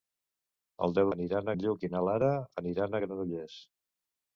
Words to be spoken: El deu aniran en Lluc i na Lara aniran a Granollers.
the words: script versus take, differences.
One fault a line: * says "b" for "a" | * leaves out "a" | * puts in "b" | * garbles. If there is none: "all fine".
all fine